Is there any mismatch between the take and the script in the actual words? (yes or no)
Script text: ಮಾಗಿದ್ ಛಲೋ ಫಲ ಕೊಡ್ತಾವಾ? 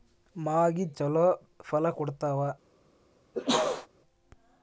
no